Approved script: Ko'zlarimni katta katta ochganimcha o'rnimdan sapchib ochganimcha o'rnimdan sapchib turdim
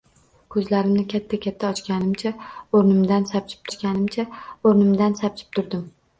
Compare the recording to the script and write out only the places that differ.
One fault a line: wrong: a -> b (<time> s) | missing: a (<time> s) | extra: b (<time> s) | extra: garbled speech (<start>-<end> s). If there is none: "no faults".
no faults